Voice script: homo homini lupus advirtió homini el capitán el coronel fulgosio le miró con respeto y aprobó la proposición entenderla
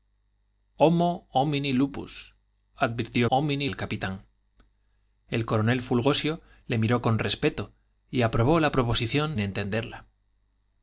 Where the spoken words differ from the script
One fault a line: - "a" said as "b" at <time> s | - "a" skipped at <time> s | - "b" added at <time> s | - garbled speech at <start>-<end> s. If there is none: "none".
none